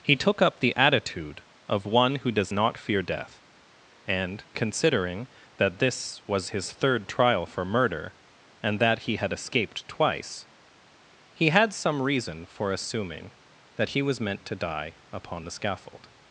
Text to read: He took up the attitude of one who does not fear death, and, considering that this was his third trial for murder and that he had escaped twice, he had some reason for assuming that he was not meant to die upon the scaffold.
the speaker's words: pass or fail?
fail